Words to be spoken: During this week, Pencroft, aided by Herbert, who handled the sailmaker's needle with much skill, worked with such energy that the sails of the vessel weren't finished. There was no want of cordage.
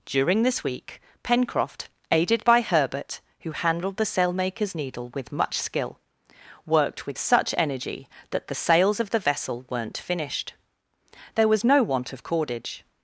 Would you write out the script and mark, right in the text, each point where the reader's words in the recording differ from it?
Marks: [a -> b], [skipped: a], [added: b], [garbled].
During this week, Pencroft, aided by Herbert, who handled the sailmaker's needle with much skill, worked with such energy that the sails of the vessel weren't finished. There was no want of cordage.